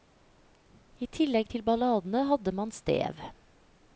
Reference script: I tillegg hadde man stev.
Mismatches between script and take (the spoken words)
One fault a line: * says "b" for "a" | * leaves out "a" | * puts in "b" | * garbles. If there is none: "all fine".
* puts in "til balladene"